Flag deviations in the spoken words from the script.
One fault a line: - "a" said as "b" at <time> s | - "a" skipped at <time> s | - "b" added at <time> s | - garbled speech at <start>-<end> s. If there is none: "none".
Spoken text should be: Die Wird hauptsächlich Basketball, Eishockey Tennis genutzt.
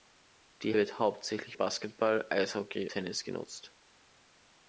none